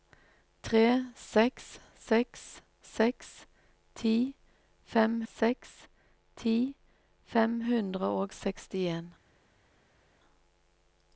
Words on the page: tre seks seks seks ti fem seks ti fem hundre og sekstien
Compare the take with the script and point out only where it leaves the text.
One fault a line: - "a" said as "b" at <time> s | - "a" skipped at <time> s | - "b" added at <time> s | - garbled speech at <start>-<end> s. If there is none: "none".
none